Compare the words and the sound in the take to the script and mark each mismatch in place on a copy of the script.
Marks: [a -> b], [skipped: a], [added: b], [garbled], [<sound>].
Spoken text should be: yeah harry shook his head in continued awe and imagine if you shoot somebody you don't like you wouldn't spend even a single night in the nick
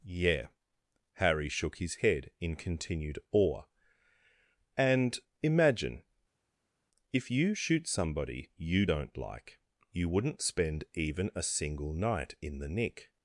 yeah harry shook his head in continued awe and imagine if you shoot somebody you don't like you wouldn't spend even a single night in the nick